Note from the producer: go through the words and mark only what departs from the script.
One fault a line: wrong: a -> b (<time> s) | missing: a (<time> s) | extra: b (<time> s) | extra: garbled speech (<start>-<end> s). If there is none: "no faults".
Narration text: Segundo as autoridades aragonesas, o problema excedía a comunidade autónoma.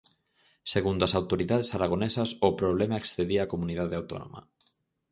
no faults